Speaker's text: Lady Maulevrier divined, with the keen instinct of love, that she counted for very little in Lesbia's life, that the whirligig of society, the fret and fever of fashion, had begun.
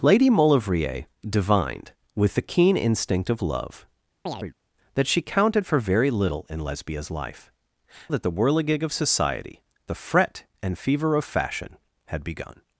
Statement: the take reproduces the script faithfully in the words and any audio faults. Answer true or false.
false